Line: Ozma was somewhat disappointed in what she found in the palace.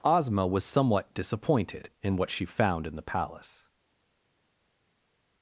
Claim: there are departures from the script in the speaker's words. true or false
false